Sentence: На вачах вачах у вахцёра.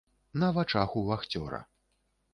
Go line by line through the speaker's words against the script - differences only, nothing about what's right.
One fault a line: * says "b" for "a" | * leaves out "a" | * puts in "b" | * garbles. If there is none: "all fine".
* leaves out "вачах"